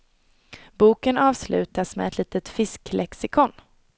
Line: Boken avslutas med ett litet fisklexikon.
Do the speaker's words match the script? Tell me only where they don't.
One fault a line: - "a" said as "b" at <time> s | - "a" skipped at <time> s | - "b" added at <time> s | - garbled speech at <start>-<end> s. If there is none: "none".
none